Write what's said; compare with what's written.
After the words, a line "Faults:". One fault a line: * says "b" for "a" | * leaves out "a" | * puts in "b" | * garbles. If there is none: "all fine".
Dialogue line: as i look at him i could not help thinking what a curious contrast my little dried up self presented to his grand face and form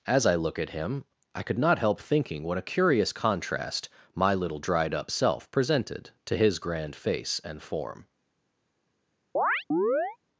as i look at him i could not help thinking what a curious contrast my little dried up self presented to his grand face and form
Faults:
all fine